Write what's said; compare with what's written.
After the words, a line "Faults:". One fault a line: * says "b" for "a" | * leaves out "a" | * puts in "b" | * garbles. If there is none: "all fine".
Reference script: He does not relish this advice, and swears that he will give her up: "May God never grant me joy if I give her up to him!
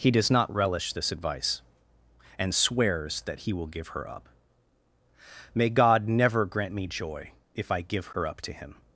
He does not relish this advice, and swears that he will give her up: "May God never grant me joy if I give her up to him!
Faults:
all fine